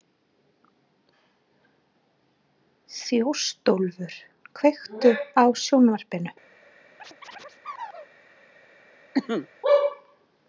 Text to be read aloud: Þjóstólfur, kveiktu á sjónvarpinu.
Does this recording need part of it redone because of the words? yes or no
no